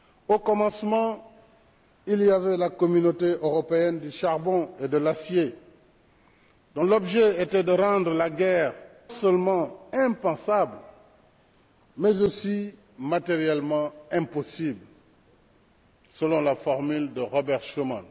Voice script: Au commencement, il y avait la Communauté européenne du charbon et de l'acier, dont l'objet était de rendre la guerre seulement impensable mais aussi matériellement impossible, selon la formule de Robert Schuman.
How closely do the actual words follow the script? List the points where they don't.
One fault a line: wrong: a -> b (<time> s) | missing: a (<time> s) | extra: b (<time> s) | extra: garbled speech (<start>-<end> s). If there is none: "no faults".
no faults